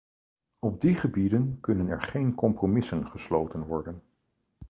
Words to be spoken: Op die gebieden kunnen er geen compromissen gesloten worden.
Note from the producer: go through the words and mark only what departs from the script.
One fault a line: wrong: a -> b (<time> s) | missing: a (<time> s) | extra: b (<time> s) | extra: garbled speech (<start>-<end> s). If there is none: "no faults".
no faults